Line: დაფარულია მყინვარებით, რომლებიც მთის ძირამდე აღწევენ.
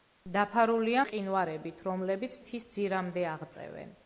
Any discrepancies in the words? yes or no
no